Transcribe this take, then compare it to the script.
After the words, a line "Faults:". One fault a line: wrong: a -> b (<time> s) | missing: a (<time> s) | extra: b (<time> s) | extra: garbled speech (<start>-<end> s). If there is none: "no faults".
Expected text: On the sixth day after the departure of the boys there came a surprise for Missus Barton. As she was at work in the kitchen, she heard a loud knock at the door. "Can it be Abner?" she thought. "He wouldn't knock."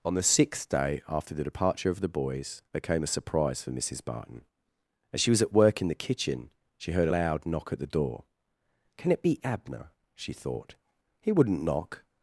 On the sixth day after the departure of the boys there came a surprise for Missus Barton. As she was at work in the kitchen, she heard loud knock at the door. "Can it be Abner?" she thought. "He wouldn't knock."
Faults:
missing: a (7.1 s)